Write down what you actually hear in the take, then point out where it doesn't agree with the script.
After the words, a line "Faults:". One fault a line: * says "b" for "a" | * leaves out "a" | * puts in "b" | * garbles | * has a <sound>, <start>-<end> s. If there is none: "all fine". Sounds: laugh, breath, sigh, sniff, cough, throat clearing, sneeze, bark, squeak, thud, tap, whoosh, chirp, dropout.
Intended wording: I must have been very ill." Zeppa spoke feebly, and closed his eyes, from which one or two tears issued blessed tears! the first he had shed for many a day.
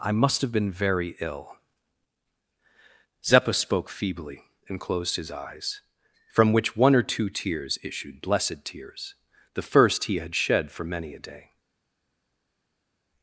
I must have been very ill." Zeppa spoke feebly, and closed his eyes, from which one or two tears issued blessed tears! the first he had shed for many a day.
Faults:
all fine